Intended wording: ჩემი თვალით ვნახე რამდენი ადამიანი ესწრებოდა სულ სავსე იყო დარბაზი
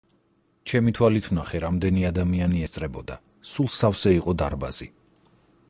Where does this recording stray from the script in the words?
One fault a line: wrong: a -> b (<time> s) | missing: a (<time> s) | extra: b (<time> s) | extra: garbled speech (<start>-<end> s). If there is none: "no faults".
no faults